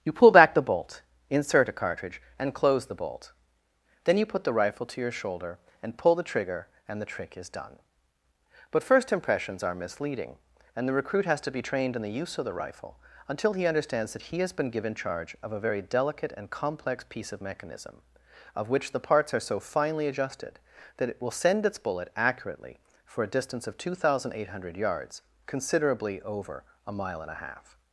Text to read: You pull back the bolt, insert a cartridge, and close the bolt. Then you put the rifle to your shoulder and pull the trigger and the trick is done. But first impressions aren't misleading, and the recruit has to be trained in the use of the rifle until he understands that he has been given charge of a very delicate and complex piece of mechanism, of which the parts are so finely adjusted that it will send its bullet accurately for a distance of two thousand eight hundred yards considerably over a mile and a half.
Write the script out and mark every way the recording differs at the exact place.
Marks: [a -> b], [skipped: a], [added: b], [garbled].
You pull back the bolt, insert a cartridge, and close the bolt. Then you put the rifle to your shoulder and pull the trigger and the trick is done. But first impressions [aren't -> are] misleading, and the recruit has to be trained in the use of the rifle until he understands that he has been given charge of a very delicate and complex piece of mechanism, of which the parts are so finely adjusted that it will send its bullet accurately for a distance of two thousand eight hundred yards considerably over a mile and a half.